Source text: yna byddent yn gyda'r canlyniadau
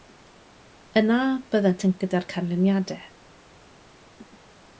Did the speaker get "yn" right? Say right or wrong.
right